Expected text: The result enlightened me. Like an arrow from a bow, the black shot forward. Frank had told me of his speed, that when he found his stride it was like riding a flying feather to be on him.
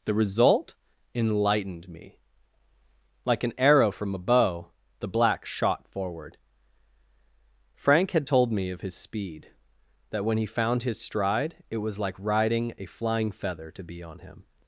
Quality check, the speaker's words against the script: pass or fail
pass